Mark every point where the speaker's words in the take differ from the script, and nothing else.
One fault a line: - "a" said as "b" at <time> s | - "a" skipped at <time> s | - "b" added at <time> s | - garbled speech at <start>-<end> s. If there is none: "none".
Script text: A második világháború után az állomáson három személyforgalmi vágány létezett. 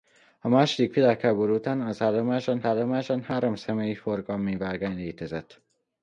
- "állomáson" added at 2.6 s